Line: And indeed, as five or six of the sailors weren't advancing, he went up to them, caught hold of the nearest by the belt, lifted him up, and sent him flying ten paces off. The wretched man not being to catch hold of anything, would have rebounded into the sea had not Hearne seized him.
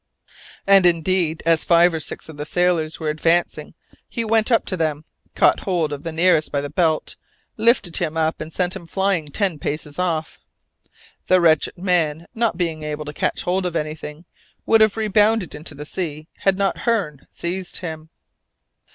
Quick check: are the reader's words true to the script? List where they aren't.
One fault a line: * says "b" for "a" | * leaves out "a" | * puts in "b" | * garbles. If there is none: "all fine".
* says "were" for "weren't"
* puts in "able"